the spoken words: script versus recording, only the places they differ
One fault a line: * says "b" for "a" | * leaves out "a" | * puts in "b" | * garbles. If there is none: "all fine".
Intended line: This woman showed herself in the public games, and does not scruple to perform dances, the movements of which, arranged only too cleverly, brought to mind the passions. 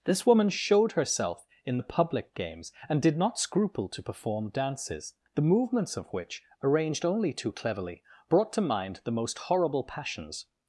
* says "did" for "does"
* puts in "most horrible"